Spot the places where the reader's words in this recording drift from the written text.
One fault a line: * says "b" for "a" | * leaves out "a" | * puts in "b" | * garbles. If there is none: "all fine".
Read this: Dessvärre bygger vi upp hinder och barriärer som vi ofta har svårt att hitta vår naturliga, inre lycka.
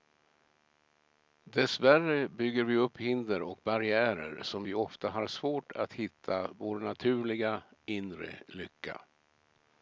all fine